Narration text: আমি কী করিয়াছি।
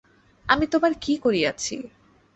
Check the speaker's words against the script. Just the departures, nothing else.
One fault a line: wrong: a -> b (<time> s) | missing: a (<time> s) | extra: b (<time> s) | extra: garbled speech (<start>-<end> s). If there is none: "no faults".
extra: তোমার (0.7 s)